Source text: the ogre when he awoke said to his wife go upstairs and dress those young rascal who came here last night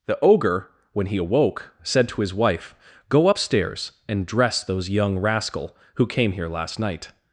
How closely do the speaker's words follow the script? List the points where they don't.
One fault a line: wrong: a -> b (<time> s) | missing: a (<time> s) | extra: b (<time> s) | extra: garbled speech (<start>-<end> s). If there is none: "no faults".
no faults